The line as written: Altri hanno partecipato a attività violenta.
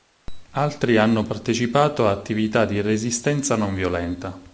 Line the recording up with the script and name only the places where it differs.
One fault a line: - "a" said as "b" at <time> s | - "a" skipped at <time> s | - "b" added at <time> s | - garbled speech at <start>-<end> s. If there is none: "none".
- "di resistenza non" added at 2.6 s